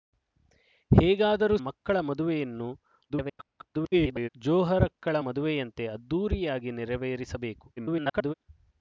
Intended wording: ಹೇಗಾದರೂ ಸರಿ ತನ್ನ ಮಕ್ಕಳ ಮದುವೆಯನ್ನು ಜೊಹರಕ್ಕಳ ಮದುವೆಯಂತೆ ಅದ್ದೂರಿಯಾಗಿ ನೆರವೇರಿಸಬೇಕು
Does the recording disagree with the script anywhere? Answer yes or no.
yes